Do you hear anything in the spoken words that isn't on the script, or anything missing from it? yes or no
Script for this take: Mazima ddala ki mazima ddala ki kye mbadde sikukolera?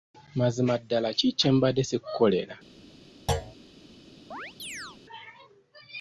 yes